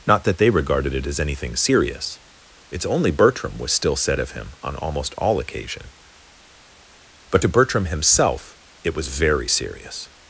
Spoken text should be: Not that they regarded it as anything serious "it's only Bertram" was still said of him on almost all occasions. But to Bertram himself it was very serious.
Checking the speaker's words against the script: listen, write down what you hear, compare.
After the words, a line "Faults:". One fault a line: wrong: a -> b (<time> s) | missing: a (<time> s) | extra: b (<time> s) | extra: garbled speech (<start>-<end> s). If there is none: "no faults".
Not that they regarded it as anything serious "it's only Bertram" was still said of him on almost all occasion. But to Bertram himself it was very serious.
Faults:
wrong: occasions -> occasion (5.4 s)